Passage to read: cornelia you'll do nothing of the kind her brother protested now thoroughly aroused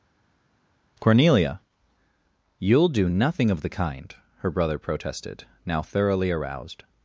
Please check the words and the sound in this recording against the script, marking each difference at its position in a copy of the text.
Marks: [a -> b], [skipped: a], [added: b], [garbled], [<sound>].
cornelia you'll do nothing of the kind her brother protested now thoroughly aroused